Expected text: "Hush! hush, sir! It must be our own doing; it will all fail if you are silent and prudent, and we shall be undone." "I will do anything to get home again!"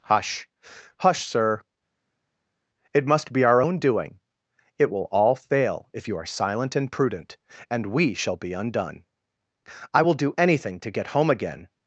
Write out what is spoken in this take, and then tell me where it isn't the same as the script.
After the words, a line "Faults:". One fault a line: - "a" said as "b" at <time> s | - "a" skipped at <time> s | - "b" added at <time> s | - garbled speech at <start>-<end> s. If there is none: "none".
"Hush! hush, sir! It must be our own doing; it will all fail if you are silent and prudent, and we shall be undone." "I will do anything to get home again!"
Faults:
none